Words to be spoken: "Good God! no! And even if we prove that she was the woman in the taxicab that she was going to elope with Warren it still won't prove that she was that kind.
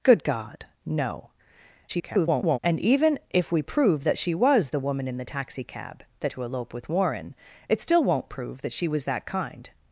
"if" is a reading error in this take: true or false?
false